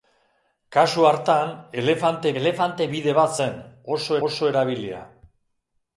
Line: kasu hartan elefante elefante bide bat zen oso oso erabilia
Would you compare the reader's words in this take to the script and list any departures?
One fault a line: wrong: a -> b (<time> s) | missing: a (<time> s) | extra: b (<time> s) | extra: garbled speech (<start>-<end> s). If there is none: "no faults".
no faults